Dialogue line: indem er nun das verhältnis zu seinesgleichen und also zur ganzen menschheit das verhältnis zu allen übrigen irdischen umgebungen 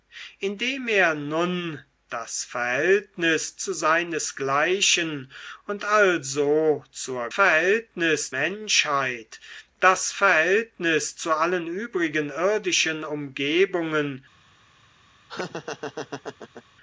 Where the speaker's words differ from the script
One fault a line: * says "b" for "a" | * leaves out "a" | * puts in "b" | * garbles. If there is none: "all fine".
* says "verhältnis" for "ganzen"